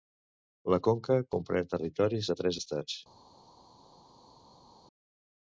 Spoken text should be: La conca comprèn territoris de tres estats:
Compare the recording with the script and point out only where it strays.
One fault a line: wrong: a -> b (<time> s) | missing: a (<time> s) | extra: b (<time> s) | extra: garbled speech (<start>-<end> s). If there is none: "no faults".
no faults